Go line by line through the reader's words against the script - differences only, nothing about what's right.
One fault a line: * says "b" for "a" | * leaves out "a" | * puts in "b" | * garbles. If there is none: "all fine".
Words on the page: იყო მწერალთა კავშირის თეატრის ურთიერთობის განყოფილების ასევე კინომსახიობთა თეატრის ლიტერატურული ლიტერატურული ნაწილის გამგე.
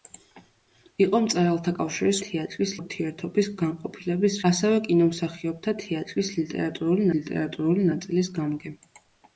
all fine